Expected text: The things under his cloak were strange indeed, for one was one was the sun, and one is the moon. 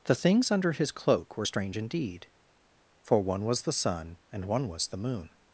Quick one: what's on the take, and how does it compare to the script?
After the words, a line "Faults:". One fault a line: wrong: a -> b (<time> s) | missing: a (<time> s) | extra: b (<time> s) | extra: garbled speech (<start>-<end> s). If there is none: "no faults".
The things under his cloak were strange indeed, for one was the sun, and one was the moon.
Faults:
missing: one was (3.6 s)
wrong: is -> was (4.7 s)